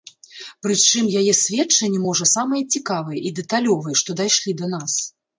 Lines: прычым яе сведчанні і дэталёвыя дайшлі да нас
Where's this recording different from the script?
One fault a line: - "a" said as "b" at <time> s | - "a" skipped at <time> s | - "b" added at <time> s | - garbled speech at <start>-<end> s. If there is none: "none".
- "можа самыя цікавыя" added at 2.0 s
- "што" added at 4.0 s